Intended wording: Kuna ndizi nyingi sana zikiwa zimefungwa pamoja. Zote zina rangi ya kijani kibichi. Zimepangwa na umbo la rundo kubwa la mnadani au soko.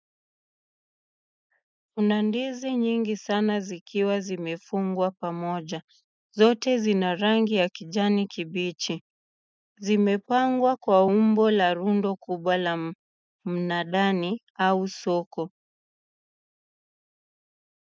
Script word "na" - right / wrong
wrong